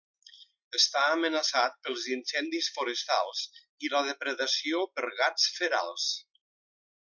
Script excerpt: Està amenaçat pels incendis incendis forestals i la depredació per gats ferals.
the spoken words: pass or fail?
fail